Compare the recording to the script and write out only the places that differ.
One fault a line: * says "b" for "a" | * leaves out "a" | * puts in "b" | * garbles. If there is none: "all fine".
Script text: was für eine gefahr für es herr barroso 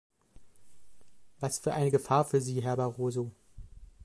* says "sie" for "es"